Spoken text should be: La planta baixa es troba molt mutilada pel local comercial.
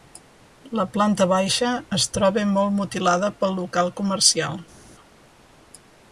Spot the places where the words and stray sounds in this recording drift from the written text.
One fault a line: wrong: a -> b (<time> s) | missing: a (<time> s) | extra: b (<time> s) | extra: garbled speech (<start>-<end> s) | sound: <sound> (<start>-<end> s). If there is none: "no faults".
no faults